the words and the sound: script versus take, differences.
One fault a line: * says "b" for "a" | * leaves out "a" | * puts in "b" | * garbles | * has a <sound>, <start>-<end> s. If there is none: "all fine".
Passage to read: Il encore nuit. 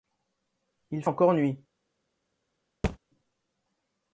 * has a thud, 2.8-3.0 s